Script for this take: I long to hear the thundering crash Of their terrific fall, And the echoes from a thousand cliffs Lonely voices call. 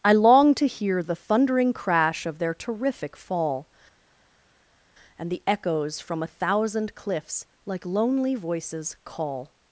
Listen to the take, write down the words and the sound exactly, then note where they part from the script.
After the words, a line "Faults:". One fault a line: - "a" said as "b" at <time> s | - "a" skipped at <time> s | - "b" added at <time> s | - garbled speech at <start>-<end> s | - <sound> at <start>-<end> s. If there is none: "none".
I long to hear the thundering crash Of their terrific fall, And the echoes from a thousand cliffs Like lonely voices call.
Faults:
- "Like" added at 7.6 s